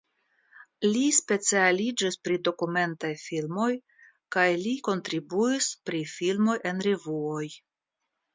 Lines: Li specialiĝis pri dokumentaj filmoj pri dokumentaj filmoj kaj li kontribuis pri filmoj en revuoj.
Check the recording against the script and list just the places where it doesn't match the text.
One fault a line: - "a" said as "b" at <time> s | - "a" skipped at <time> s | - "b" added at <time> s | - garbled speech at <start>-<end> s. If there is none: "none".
- "pri dokumentaj filmoj" skipped at 3.7 s